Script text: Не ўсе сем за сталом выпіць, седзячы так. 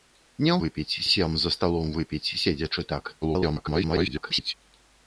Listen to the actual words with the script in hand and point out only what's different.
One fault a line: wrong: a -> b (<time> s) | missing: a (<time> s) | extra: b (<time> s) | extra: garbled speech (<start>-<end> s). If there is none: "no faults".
wrong: ўсе -> выпіць (0.6 s)
extra: garbled speech (3.2-4.5 s)